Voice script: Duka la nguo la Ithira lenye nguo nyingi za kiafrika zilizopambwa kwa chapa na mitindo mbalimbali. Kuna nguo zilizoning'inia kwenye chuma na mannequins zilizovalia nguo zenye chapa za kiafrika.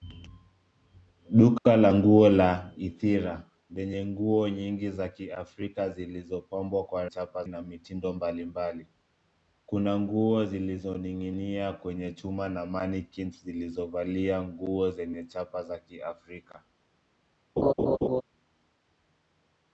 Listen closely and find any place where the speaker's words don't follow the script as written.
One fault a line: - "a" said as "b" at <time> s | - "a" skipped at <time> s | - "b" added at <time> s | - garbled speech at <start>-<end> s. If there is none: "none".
none